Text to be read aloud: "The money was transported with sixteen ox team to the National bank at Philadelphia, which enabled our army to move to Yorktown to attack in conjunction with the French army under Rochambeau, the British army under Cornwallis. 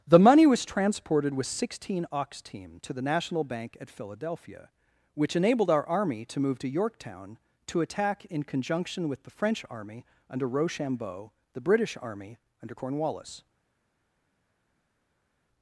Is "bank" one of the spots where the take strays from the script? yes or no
no